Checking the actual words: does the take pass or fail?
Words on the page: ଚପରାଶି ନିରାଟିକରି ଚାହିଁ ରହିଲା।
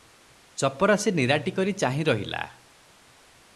pass